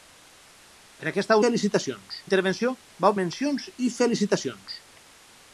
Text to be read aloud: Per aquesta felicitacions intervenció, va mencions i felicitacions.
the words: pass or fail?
pass